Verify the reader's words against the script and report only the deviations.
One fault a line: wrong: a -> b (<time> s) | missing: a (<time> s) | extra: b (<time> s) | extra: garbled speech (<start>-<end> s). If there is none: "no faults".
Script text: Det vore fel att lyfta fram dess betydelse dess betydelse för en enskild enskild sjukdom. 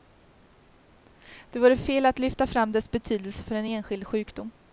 missing: dess betydelse (3.4 s)
missing: enskild (4.1 s)